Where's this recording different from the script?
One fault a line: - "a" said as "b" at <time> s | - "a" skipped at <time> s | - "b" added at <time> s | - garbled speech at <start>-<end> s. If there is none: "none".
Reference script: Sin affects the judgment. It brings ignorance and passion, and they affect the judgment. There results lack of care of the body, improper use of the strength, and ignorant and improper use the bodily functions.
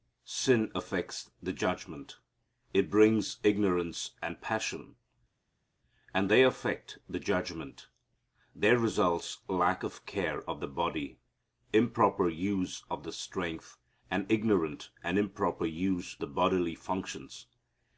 none